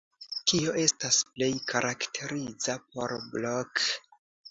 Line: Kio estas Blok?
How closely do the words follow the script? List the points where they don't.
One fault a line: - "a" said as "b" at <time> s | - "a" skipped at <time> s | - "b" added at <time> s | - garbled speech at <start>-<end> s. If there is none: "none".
- "plej karakteriza por" added at 1.3 s